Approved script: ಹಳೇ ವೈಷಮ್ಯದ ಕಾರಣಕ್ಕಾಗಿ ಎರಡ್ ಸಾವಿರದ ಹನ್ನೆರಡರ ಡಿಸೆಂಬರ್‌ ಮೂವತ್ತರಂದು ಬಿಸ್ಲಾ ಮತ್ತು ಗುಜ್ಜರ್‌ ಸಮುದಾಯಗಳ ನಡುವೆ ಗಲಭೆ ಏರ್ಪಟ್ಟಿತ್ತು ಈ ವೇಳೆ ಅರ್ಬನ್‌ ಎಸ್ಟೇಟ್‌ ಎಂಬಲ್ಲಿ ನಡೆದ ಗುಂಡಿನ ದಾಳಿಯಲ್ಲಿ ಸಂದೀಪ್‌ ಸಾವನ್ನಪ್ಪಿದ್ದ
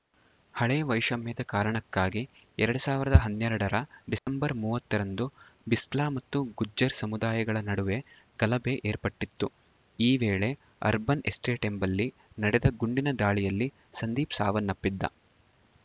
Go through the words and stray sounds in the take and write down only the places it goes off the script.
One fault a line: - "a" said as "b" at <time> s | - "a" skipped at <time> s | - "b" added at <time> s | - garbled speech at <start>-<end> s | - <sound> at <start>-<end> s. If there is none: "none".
- dropout at 4.2-4.3 s